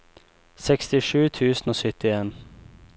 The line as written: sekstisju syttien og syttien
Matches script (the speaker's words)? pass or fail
fail